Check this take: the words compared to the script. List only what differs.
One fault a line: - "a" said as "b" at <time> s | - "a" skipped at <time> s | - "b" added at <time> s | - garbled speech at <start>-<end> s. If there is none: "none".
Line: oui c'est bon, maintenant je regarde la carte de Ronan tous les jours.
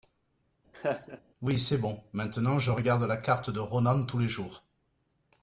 none